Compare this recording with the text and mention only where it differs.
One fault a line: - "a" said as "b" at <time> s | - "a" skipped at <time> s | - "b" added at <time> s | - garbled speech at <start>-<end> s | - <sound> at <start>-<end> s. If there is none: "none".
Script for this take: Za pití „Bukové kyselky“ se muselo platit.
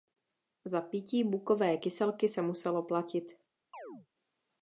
- chirp at 3.7-4.1 s